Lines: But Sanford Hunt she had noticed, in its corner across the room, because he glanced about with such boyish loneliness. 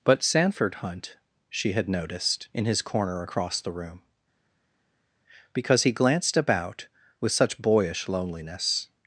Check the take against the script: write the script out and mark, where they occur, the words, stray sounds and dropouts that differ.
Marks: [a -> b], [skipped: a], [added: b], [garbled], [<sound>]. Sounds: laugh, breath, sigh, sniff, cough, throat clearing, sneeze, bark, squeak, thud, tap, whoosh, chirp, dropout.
But Sanford Hunt she had noticed, in [its -> his] corner across the room, because he glanced about with such boyish loneliness.